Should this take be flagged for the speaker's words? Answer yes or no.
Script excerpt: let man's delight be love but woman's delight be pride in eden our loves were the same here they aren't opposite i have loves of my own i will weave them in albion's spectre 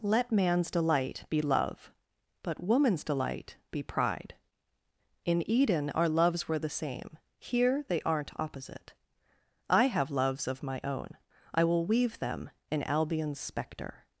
no